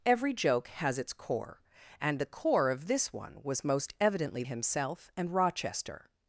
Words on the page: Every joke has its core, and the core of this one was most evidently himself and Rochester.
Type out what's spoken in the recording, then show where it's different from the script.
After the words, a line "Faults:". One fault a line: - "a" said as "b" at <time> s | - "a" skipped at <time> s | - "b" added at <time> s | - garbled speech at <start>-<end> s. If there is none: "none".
Every joke has its core, and the core of this one was most evidently himself and Rochester.
Faults:
none